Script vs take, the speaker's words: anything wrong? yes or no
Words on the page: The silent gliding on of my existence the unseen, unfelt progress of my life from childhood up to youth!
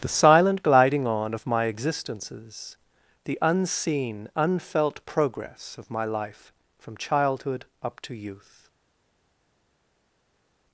yes